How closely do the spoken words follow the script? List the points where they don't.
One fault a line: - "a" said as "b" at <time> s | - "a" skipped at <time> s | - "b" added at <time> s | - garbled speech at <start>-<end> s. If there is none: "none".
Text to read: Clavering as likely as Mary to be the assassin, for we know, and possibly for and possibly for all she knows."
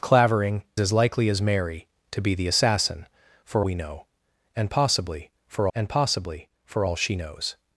none